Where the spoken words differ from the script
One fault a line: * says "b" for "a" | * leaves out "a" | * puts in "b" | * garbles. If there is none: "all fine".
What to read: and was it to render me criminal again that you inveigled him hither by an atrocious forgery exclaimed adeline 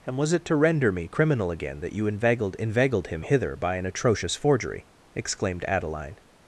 * puts in "inveigled"